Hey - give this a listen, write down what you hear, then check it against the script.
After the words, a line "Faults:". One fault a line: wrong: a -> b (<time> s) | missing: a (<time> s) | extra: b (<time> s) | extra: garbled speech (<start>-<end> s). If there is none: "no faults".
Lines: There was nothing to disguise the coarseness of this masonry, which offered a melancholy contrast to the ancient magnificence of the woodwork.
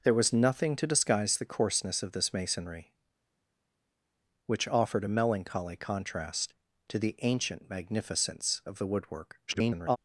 There was nothing to disguise the coarseness of this masonry, which offered a melancholy contrast to the ancient magnificence of the woodwork. [garbled]
Faults:
extra: garbled speech (9.5-10.0 s)